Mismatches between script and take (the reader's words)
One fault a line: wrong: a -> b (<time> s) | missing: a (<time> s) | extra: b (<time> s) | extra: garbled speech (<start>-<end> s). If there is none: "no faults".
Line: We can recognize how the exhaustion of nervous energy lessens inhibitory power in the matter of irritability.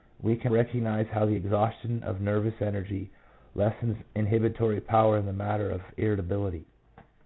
no faults